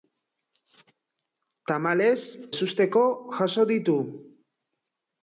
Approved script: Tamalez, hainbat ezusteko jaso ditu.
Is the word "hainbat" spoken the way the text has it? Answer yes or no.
no